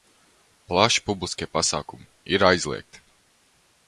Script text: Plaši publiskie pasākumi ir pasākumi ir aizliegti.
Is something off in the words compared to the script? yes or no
yes